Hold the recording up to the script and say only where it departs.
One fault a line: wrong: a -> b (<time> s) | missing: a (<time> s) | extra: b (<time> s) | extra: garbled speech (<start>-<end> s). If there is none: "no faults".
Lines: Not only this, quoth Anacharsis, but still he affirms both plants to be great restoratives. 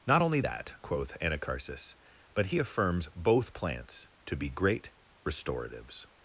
wrong: this -> that (0.4 s)
missing: still (2.5 s)